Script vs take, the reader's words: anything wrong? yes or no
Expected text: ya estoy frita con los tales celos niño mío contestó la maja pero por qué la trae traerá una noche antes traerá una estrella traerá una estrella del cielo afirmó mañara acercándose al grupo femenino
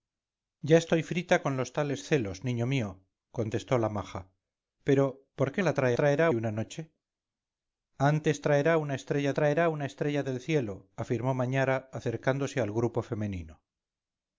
no